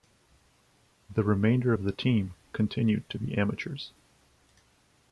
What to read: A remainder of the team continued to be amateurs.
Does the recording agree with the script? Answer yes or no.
no